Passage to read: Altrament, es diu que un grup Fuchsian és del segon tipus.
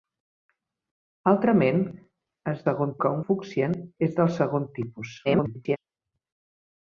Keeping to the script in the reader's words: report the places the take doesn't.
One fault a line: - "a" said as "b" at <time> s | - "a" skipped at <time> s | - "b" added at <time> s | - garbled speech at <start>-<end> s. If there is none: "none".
- "diu" said as "segon" at 2.7 s
- "grup" skipped at 3.2 s
- garbled speech at 5.2-5.8 s